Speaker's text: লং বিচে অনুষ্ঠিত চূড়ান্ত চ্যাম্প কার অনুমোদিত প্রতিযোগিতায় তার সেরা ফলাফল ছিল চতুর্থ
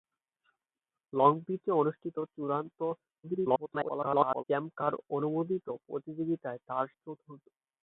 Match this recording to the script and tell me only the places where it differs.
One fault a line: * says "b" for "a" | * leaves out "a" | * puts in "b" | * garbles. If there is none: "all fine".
* garbles
* leaves out "সেরা ফলাফল ছিল"